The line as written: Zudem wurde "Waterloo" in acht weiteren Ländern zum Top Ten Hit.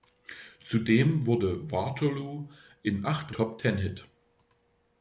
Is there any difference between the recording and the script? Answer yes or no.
yes